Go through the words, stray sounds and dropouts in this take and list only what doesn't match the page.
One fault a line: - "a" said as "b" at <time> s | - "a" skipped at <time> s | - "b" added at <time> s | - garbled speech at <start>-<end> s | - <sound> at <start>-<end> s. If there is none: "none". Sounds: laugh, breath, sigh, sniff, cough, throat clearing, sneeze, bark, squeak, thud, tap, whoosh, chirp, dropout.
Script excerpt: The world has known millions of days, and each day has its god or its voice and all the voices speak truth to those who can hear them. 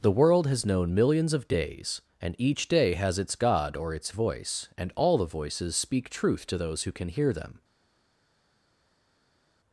none